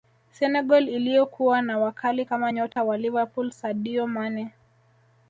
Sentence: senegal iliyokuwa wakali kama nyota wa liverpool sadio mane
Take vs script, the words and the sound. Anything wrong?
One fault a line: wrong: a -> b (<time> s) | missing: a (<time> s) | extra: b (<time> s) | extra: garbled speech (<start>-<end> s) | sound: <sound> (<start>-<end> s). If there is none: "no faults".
extra: na (1.6 s)
sound: dropout (2.7-2.8 s)